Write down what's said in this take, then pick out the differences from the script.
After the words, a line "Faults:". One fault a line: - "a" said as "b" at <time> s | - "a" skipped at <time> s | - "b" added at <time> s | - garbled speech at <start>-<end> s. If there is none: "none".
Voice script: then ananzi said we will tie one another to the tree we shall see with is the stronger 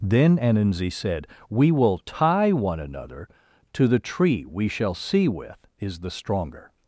then ananzi said we will tie one another to the tree we shall see with is the stronger
Faults:
none